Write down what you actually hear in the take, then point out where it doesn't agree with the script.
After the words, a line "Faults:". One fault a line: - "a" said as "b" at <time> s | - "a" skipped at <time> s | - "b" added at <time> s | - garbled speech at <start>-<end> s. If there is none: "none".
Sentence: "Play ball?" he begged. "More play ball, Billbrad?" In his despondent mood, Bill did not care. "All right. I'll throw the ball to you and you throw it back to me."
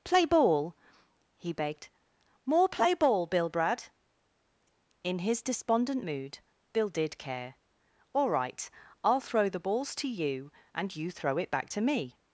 "Play ball?" he begged. "More play ball, Billbrad?" In his despondent mood, Bill did care. "All right. I'll throw the balls to you and you throw it back to me."
Faults:
- "not" skipped at 7.2 s
- "ball" said as "balls" at 9.6 s